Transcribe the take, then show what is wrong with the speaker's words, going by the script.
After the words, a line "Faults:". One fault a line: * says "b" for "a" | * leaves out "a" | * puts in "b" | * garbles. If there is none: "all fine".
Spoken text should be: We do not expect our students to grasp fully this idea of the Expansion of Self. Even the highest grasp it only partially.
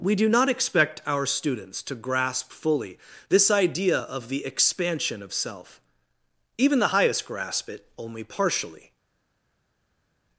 We do not expect our students to grasp fully this idea of the Expansion of Self. Even the highest grasp it only partially.
Faults:
all fine